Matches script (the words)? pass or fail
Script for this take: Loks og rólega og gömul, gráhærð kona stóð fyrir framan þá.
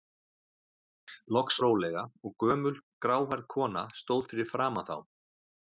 pass